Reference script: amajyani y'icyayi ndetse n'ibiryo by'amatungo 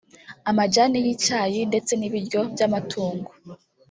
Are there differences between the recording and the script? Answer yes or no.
no